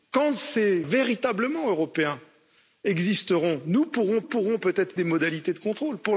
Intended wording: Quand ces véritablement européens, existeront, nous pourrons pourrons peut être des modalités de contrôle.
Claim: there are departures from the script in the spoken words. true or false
false